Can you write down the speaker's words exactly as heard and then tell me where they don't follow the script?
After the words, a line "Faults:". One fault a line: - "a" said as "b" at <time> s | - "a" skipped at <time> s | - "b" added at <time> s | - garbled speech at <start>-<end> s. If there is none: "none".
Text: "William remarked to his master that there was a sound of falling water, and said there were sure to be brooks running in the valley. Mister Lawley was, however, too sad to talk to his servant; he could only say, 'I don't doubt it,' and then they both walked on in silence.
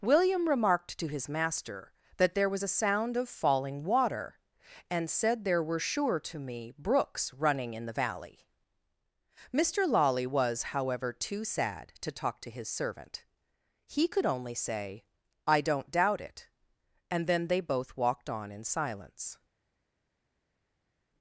"William remarked to his master that there was a sound of falling water, and said there were sure to me brooks running in the valley. Mister Lawley was, however, too sad to talk to his servant; he could only say, 'I don't doubt it,' and then they both walked on in silence.
Faults:
- "be" said as "me" at 6.4 s